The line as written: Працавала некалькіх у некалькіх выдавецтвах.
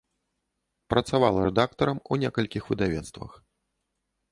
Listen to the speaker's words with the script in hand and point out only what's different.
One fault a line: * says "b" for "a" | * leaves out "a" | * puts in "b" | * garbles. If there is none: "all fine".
* says "рэдактарам" for "некалькіх"